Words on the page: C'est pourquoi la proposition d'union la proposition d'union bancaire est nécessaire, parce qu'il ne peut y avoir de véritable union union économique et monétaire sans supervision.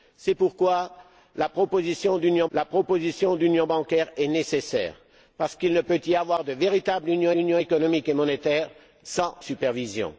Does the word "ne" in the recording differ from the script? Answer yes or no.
no